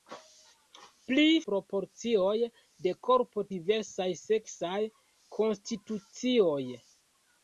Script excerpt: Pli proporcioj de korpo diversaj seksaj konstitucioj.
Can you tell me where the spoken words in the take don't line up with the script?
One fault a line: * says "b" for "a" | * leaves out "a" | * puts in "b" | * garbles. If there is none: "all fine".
all fine